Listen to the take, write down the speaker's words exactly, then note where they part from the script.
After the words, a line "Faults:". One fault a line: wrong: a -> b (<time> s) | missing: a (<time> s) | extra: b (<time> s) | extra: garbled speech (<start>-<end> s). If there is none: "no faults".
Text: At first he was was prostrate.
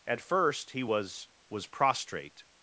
At first he was was prostrate.
Faults:
no faults